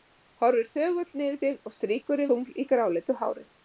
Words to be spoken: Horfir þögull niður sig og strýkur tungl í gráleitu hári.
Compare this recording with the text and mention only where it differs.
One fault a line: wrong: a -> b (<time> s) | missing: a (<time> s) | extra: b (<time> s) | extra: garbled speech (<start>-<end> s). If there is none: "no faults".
no faults